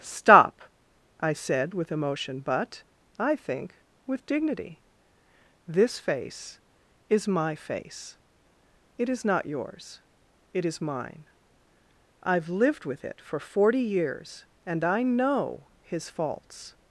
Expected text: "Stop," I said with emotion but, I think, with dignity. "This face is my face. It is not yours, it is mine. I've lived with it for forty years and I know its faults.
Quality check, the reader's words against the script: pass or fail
fail